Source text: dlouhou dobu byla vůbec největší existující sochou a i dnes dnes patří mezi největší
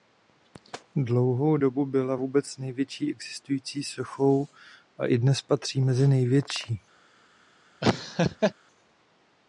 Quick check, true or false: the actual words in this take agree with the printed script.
false